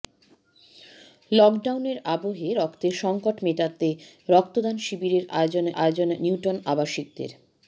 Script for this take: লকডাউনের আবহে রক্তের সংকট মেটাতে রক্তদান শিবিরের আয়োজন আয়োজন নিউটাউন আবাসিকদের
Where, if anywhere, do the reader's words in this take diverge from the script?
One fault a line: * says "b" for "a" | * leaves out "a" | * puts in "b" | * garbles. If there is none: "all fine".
all fine